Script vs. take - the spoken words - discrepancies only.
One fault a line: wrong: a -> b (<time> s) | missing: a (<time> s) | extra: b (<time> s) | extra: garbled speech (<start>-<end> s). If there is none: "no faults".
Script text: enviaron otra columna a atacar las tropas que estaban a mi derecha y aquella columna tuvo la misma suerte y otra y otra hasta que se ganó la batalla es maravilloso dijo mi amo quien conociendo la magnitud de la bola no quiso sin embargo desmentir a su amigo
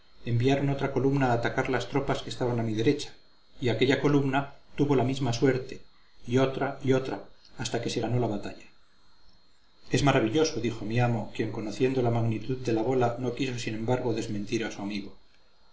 no faults